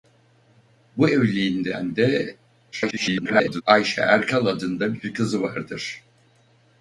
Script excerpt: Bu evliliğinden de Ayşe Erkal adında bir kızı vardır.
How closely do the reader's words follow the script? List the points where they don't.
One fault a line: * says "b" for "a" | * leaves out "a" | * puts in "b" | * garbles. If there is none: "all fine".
* garbles